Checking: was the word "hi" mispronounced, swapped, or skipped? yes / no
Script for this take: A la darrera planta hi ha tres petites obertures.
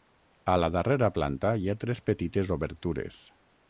no